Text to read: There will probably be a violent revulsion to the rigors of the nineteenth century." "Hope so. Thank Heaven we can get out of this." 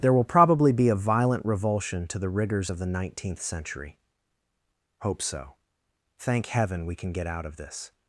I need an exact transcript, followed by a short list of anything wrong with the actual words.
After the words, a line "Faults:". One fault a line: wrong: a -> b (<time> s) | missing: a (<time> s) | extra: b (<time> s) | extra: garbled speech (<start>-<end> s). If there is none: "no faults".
There will probably be a violent revulsion to the rigors of the nineteenth century." "Hope so. Thank Heaven we can get out of this."
Faults:
no faults